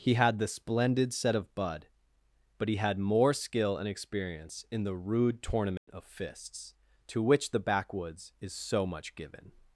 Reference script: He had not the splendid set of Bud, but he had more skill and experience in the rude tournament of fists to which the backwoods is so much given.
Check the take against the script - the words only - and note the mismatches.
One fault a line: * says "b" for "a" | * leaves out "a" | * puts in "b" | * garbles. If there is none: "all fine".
* leaves out "not"